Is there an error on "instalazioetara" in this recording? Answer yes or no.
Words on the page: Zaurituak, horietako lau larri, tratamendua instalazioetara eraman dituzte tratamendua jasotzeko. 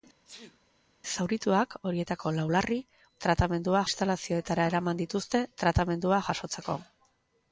no